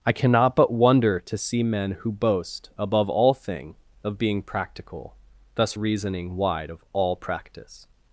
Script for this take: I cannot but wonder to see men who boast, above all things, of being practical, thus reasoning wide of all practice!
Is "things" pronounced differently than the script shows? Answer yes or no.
yes